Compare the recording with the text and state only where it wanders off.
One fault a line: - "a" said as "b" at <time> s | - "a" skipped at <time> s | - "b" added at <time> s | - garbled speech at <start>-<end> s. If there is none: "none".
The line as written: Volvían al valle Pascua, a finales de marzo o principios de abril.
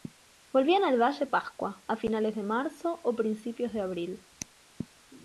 none